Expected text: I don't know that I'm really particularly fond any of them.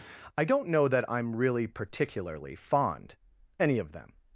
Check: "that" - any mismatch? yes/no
no